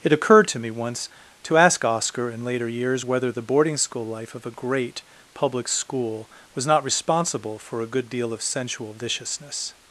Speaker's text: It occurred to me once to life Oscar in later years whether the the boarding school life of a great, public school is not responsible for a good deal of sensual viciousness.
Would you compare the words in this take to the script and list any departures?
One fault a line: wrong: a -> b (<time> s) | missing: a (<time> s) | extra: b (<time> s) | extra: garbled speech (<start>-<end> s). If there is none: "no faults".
wrong: life -> ask (1.6 s)
missing: the (3.4 s)
wrong: is -> was (6.5 s)